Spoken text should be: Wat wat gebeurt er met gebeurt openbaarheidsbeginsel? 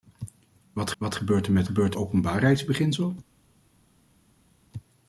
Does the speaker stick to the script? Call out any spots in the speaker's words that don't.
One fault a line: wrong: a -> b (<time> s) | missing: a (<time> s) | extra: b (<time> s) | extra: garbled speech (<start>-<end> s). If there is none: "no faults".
no faults